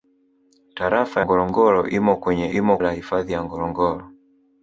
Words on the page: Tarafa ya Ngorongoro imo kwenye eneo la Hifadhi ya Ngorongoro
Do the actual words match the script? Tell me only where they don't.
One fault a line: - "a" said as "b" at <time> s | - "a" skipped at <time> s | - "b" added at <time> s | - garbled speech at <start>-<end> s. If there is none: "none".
- "ya" skipped at 1.2 s
- "eneo" said as "imo" at 2.5 s